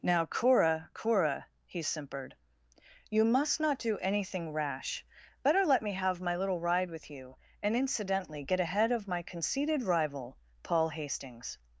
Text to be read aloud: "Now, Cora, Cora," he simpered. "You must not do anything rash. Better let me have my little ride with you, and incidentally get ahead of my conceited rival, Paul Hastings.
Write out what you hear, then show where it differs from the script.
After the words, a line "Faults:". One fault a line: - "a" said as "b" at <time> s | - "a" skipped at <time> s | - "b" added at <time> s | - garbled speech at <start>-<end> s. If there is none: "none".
"Now, Cora, Cora," he simpered. "You must not do anything rash. Better let me have my little ride with you, and incidentally get ahead of my conceited rival, Paul Hastings.
Faults:
none